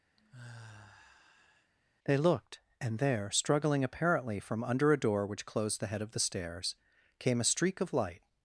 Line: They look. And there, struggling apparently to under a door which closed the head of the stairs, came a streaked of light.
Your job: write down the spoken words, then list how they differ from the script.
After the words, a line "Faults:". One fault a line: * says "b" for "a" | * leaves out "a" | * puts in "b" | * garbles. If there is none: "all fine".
They looked. And there, struggling apparently from under a door which closed the head of the stairs, came a streak of light.
Faults:
* says "looked" for "look"
* says "from" for "to"
* says "streak" for "streaked"